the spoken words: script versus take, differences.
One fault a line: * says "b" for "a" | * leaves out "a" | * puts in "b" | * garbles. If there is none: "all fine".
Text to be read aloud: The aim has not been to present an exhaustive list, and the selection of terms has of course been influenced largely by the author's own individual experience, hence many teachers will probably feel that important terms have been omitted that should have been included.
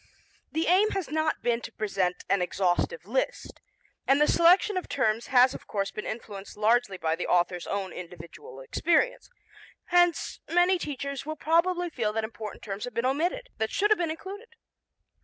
all fine